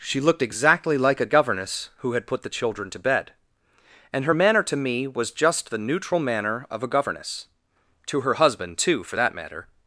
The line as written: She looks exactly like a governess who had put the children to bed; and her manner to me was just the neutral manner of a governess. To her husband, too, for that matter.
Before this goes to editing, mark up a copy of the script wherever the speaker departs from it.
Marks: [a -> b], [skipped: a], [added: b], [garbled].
She [looks -> looked] exactly like a governess who had put the children to bed; and her manner to me was just the neutral manner of a governess. To her husband, too, for that matter.